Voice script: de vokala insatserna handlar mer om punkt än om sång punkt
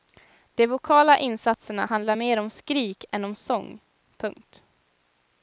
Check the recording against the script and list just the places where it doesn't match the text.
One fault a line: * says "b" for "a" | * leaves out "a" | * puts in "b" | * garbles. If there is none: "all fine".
* says "skrik" for "punkt"